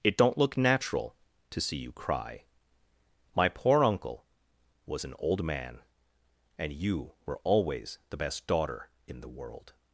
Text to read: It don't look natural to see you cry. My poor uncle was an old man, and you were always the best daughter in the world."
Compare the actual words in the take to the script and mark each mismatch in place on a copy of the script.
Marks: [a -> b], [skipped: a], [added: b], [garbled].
It don't look natural to see you cry. My poor uncle was an old man, and you were always the best daughter in the world."